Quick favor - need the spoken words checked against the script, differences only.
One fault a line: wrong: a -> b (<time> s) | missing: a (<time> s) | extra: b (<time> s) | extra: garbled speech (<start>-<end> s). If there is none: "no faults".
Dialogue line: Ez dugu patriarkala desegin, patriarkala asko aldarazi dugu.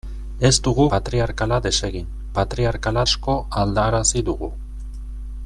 no faults